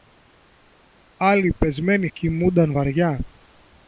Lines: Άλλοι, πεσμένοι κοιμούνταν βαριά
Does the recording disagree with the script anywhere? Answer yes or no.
no